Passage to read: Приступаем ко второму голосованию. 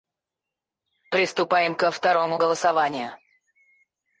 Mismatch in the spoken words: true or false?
false